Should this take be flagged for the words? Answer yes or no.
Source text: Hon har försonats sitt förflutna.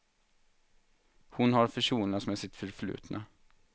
yes